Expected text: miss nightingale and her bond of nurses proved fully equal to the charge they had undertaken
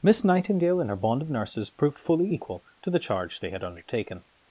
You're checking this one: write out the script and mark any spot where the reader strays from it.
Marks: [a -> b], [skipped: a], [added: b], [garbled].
miss nightingale and her bond of nurses proved fully equal to the charge they had undertaken